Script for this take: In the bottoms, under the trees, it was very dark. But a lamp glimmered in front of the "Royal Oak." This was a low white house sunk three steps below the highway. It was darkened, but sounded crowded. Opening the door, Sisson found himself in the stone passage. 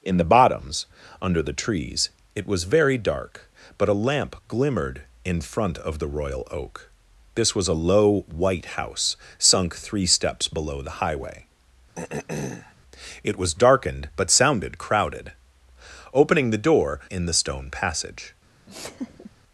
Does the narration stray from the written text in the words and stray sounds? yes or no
yes